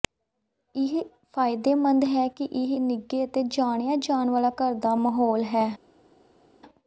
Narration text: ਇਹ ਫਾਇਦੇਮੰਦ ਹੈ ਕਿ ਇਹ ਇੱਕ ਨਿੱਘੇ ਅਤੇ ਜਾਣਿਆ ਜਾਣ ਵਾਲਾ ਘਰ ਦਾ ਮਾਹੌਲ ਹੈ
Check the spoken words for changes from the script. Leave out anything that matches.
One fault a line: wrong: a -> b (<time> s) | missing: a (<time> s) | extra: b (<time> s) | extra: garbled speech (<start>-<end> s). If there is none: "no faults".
missing: ਇੱਕ (2.8 s)